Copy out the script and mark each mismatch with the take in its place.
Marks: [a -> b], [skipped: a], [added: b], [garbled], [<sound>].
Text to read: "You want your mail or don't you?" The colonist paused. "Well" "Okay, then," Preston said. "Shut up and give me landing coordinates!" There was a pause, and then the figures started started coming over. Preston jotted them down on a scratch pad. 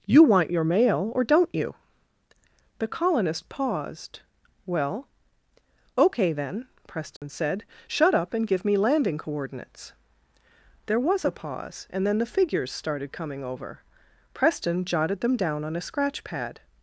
"You want your mail or don't you?" The colonist paused. "Well" "Okay, then," Preston [dropout] said. "Shut up and give me landing coordinates!" There was a pause, and then the figures started [skipped: started] coming over. Preston jotted them down on a scratch pad.